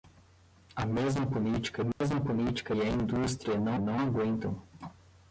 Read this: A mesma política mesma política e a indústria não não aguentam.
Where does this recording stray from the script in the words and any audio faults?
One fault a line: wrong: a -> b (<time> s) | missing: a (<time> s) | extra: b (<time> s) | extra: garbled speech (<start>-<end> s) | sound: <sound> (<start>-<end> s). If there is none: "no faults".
sound: dropout (1.9-2.0 s)